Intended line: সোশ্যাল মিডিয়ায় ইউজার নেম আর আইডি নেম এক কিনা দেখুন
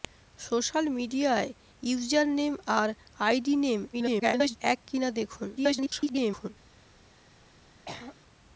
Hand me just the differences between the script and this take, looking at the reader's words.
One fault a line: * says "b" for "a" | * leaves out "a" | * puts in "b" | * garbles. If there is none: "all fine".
* garbles
* garbles